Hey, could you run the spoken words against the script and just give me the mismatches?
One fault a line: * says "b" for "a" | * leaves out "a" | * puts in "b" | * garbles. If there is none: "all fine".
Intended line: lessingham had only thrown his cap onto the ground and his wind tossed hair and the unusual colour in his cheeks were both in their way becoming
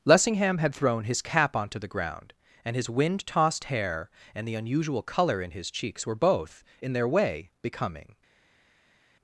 * leaves out "only"